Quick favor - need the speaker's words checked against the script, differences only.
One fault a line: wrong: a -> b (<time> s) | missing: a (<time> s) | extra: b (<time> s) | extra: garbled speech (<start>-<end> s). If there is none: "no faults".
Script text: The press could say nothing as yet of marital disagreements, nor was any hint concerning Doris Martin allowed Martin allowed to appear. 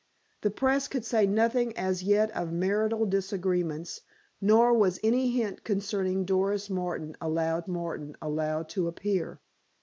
no faults